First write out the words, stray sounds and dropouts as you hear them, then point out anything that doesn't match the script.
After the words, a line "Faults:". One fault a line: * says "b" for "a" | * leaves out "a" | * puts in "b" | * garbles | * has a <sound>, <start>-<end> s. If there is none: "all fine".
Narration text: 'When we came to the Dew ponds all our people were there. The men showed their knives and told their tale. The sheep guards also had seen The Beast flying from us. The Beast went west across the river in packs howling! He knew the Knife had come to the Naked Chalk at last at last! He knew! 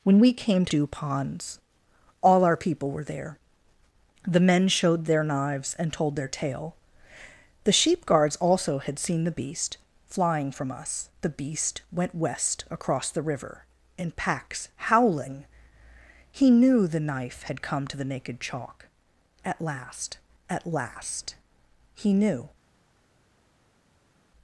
'When we came to Dew ponds all our people were there. The men showed their knives and told their tale. The sheep guards also had seen The Beast flying from us. The Beast went west across the river in packs howling! He knew the Knife had come to the Naked Chalk at last at last! He knew!
Faults:
* leaves out "the"